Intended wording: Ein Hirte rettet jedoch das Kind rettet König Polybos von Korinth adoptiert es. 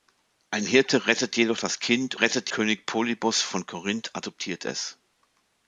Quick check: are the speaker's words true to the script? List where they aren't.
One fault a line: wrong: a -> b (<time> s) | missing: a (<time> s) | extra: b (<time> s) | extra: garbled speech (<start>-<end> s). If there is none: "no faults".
no faults